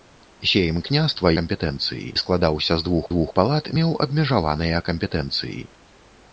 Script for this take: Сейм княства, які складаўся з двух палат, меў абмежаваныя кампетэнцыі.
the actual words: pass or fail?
fail